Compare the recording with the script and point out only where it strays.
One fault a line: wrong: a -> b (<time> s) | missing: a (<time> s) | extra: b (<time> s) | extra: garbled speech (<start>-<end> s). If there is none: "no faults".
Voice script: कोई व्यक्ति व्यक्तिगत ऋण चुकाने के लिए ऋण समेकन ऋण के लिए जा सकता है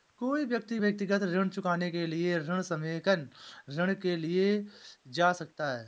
no faults